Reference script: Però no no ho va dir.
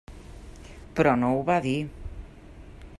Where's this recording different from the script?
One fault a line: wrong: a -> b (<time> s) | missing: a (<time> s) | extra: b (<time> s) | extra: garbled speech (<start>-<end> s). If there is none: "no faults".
missing: no (1.3 s)